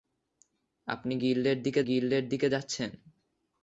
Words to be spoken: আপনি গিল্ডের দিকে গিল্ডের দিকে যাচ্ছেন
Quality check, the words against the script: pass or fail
pass